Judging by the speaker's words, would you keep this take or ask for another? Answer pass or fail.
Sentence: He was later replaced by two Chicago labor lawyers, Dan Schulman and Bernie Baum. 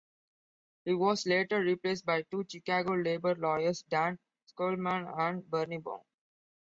pass